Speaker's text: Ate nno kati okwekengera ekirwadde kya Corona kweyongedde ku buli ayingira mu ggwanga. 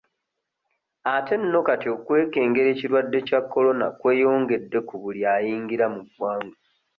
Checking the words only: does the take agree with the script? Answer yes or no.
yes